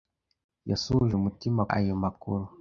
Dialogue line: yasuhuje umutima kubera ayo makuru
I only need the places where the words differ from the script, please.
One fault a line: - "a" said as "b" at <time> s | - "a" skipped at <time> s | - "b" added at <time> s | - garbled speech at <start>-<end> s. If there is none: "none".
- "kubera" skipped at 1.6 s